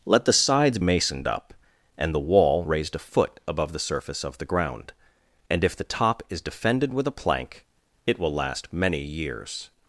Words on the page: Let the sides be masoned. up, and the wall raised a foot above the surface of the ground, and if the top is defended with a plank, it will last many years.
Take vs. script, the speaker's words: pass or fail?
fail